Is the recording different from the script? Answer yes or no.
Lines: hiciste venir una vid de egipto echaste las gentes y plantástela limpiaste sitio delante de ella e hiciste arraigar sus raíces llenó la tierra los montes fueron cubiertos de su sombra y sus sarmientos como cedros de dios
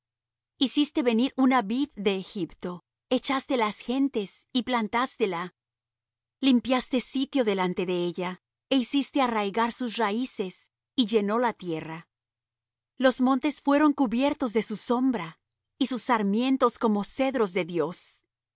yes